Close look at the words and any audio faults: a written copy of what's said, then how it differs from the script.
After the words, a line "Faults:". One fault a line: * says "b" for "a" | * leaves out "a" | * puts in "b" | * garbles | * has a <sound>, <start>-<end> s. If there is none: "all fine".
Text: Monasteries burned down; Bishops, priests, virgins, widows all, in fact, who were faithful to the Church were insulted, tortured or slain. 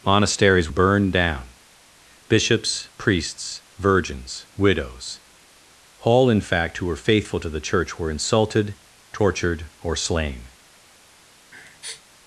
Monasteries burned down; Bishops, priests, virgins, widows all, in fact, who were faithful to the Church were insulted, tortured or slain.
Faults:
* has a sniff, 11.5-12.0 s